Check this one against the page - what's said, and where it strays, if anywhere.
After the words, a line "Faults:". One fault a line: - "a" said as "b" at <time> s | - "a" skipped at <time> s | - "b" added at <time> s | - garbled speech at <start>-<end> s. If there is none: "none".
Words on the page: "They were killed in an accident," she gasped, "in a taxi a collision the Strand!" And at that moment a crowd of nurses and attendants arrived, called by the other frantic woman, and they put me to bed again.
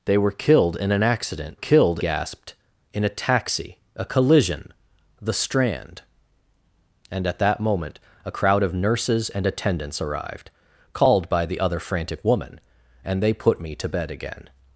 "They were killed in an accident," killed gasped, "in a taxi a collision the Strand!" And at that moment a crowd of nurses and attendants arrived, called by the other frantic woman, and they put me to bed again.
Faults:
- "she" said as "killed" at 1.5 s